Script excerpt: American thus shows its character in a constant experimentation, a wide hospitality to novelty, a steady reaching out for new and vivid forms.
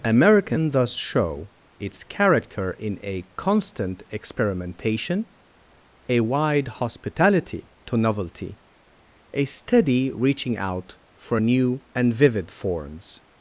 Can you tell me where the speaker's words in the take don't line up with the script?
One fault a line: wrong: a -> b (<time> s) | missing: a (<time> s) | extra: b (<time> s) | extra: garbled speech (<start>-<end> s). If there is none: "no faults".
wrong: shows -> show (0.9 s)